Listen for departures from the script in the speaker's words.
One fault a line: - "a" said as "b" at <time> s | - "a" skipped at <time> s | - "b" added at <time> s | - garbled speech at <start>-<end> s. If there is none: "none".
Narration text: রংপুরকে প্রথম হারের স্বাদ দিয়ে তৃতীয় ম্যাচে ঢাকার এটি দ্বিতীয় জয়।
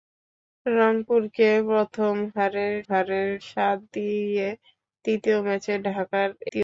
- "হারের" added at 2.9 s
- "এটি দ্বিতীয়" skipped at 6.3 s